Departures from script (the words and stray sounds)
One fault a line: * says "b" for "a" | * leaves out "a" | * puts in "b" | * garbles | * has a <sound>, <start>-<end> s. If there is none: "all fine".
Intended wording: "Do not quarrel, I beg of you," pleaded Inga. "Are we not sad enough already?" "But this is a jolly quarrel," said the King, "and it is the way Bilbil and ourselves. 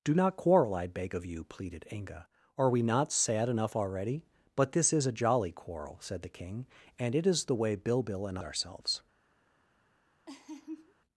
* has a laugh, 10.3-10.9 s